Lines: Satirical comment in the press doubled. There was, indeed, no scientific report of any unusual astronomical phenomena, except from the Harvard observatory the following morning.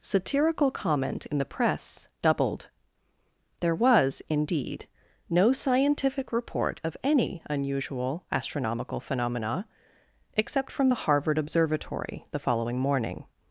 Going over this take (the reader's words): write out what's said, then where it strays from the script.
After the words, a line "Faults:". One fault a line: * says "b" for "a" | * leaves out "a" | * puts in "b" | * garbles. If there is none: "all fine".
Satirical comment in the press doubled. There was, indeed, no scientific report of any unusual astronomical phenomena, except from the Harvard observatory the following morning.
Faults:
all fine